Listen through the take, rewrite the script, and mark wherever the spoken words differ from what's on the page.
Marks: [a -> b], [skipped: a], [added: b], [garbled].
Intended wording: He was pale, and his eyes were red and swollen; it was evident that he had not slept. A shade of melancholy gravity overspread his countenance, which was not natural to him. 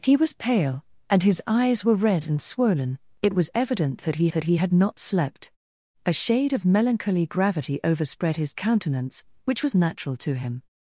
He was pale, and his eyes were red and swollen; it was evident that he [added: that he] had not slept. A shade of melancholy gravity overspread his countenance, which was [skipped: not] natural to him.